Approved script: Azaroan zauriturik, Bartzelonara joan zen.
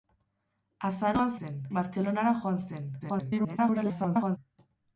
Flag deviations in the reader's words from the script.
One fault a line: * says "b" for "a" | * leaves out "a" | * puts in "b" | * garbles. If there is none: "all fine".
* says "zen" for "zauriturik"
* garbles